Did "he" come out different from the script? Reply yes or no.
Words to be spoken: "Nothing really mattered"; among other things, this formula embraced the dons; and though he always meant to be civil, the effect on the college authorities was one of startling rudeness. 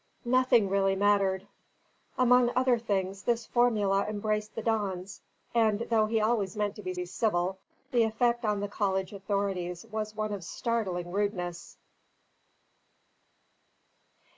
no